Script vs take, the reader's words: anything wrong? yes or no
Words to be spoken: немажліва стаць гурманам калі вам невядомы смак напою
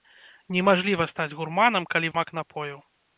yes